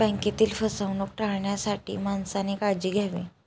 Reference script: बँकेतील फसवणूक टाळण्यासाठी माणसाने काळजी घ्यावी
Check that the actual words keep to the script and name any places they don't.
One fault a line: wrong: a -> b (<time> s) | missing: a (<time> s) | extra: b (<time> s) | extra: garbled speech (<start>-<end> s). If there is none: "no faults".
no faults